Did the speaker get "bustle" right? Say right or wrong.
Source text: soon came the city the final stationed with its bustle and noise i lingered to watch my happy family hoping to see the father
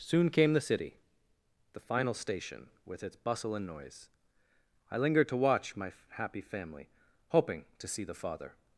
right